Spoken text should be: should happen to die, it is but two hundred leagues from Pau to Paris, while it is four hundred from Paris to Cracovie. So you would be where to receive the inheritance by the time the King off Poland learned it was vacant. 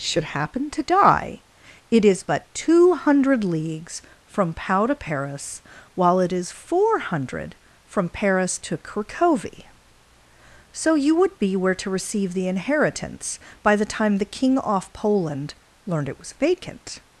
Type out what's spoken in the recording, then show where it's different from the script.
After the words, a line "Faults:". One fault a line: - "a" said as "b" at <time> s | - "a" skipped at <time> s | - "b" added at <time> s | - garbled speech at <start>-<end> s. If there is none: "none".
should happen to die, it is but two hundred leagues from Pau to Paris, while it is four hundred from Paris to Cracovie. So you would be where to receive the inheritance by the time the King off Poland learned it was vacant.
Faults:
none